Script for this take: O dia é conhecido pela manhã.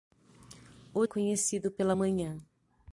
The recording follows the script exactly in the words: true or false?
false